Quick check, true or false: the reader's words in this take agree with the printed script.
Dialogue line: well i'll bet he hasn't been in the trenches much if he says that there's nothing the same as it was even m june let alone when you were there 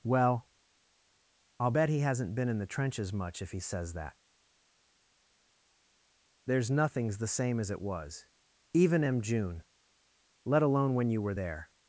false